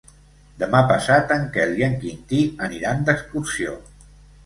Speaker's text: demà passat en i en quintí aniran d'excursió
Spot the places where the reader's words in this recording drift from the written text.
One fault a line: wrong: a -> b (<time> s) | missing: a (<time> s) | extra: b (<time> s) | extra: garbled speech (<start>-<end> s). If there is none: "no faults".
extra: quel (1.6 s)